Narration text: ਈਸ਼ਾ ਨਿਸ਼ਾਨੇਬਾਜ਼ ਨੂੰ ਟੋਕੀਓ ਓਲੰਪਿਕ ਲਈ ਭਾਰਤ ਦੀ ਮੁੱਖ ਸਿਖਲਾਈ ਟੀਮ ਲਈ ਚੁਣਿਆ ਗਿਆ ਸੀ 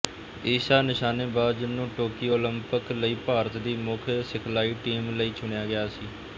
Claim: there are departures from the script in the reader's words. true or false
false